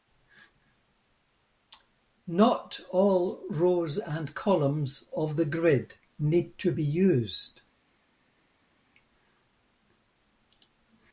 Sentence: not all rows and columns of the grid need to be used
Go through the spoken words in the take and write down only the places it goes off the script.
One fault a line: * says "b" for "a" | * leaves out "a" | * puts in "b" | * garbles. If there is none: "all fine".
all fine